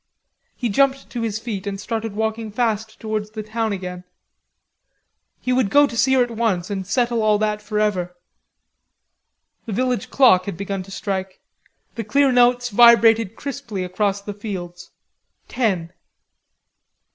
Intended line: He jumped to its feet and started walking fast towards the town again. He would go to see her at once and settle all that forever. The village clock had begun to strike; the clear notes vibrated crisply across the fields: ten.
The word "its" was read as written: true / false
false